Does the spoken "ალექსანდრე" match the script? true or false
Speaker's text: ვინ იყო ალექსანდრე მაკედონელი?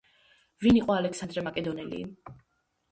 true